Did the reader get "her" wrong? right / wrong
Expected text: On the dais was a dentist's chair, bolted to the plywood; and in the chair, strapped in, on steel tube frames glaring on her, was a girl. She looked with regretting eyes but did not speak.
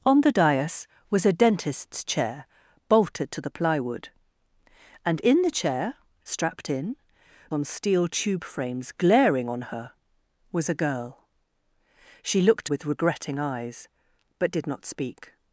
right